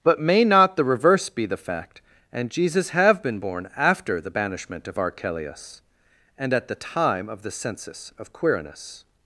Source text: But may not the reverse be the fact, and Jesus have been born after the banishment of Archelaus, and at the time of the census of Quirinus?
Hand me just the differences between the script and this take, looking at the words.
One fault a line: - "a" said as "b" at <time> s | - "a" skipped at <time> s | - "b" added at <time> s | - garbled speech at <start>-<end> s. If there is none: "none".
none